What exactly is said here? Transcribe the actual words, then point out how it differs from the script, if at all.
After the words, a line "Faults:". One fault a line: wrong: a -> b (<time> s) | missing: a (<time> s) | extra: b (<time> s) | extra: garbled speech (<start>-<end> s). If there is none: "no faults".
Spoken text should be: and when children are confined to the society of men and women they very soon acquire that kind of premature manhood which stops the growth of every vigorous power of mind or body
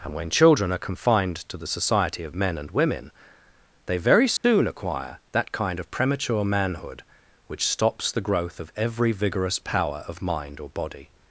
and when children are confined to the society of men and women they very soon acquire that kind of premature manhood which stops the growth of every vigorous power of mind or body
Faults:
no faults